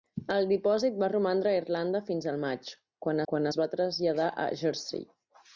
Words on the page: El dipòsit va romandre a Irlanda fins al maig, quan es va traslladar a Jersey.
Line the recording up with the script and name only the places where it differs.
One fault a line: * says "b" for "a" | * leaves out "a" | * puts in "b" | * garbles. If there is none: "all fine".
* puts in "quan"